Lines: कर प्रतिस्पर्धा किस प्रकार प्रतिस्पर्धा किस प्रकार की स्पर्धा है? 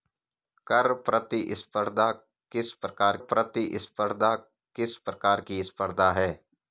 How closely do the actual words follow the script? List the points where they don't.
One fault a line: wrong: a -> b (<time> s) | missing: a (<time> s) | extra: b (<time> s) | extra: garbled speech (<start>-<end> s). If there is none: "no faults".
no faults